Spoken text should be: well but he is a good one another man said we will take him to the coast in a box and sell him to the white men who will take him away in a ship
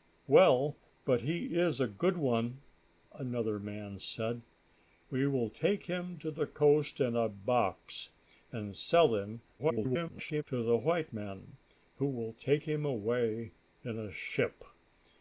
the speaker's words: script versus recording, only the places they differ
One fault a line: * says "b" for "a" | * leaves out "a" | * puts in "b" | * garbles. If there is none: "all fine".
* garbles